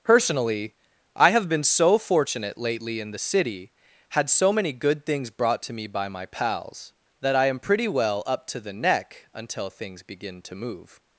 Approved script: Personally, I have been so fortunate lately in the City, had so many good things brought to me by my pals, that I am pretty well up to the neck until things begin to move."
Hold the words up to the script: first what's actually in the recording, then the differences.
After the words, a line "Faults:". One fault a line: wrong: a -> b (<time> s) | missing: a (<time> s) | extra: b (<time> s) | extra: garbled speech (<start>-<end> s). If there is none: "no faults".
Personally, I have been so fortunate lately in the City, had so many good things brought to me by my pals, that I am pretty well up to the neck until things begin to move."
Faults:
no faults